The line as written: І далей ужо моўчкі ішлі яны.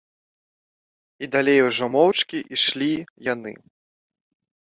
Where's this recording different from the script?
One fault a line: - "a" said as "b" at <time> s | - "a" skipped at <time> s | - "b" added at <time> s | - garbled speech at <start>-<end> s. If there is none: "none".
none